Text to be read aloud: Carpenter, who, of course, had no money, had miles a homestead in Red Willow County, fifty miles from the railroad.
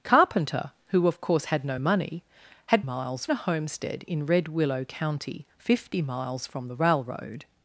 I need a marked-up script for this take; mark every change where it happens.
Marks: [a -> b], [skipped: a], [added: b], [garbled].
Carpenter, who, of course, had no money, had miles a homestead in Red Willow County, fifty miles from the railroad.